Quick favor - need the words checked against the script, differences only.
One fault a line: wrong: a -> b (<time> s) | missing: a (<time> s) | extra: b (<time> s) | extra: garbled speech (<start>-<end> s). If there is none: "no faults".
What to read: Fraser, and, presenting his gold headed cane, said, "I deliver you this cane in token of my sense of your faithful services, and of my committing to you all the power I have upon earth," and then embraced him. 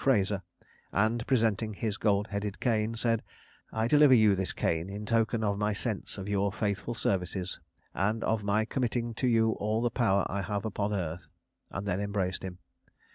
no faults